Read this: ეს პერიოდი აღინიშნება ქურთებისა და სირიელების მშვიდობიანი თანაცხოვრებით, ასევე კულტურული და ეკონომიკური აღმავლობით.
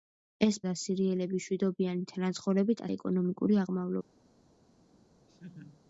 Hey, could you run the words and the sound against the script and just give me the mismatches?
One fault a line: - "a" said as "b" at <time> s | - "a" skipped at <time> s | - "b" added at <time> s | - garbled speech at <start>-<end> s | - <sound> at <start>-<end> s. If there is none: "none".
- "პერიოდი აღინიშნება ქურთებისა" skipped at 0.6 s
- "ასევე კულტურული და" skipped at 2.8 s
- laugh at 5.3-5.8 s